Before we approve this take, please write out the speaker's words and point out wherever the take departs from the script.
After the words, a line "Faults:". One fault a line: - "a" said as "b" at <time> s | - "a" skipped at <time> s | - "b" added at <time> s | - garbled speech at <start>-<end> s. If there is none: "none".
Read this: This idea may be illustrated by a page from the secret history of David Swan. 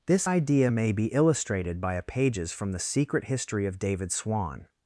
This idea may be illustrated by a pages from the secret history of David Swan.
Faults:
- "page" said as "pages" at 2.0 s